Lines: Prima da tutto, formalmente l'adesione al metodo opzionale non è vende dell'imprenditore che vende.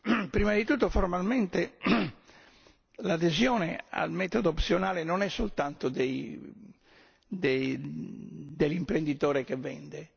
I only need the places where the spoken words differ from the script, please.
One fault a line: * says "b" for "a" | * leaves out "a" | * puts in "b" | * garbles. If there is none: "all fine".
* says "di" for "da"
* says "soltanto" for "vende"